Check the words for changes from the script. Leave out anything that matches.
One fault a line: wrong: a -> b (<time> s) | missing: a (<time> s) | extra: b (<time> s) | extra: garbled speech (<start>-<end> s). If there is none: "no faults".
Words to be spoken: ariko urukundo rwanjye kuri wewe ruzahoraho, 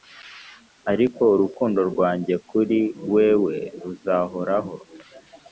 no faults